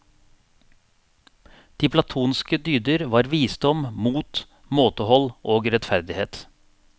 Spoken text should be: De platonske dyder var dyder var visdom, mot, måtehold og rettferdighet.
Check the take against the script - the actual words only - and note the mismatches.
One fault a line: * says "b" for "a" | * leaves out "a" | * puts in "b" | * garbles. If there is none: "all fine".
* leaves out "dyder var"